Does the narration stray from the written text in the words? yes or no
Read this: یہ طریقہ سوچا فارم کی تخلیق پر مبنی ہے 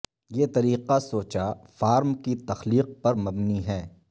no